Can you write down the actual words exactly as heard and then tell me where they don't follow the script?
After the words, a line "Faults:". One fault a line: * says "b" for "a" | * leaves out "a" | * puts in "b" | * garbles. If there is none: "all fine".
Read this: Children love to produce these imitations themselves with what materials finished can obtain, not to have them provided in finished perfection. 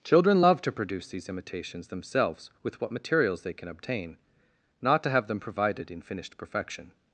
Children love to produce these imitations themselves with what materials they can obtain, not to have them provided in finished perfection.
Faults:
* says "they" for "finished"